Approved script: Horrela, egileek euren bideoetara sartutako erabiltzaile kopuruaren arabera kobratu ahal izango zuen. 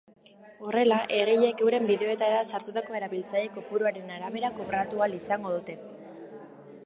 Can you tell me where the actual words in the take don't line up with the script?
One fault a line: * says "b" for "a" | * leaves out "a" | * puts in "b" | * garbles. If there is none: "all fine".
* says "dute" for "zuen"